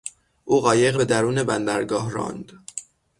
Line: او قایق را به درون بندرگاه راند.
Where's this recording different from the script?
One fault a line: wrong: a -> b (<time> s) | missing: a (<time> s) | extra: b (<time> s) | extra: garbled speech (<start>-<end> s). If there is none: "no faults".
missing: را (1.0 s)